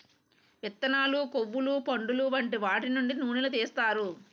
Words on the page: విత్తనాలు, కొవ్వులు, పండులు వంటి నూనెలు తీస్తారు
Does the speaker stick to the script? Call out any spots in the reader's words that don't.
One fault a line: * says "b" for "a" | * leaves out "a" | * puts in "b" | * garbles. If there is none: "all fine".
* puts in "వాటి నుండి"